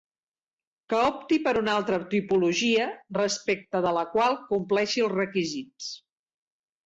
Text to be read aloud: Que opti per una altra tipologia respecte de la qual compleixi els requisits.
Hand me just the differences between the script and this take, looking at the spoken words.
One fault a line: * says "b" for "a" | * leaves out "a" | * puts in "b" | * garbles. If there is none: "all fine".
all fine